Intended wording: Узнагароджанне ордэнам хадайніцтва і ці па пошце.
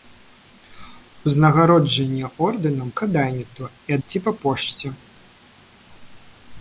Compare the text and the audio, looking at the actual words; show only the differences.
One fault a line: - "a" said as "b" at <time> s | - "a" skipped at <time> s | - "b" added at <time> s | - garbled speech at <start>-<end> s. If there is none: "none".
none